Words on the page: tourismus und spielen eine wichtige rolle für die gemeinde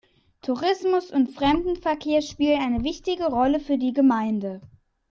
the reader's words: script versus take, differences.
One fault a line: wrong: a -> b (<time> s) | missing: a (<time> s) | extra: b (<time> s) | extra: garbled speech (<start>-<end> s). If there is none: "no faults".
extra: fremdenverkehr (1.3 s)